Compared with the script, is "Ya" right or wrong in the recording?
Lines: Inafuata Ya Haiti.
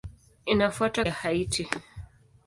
right